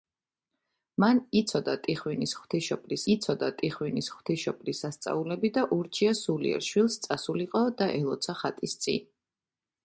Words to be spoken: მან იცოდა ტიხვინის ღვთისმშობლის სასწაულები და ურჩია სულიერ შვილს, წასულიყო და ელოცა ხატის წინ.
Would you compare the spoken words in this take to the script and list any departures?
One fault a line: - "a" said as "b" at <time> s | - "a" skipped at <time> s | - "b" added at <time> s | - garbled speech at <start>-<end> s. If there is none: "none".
- "იცოდა ტიხვინის ღვთისმშობლის" added at 3.1 s